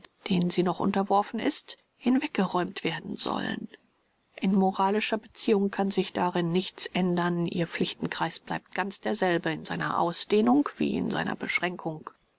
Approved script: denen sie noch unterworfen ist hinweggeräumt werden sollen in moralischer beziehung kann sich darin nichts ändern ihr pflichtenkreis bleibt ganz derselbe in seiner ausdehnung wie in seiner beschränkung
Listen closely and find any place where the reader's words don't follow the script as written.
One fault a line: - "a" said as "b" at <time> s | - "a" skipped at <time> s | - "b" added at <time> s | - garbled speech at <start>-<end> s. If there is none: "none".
none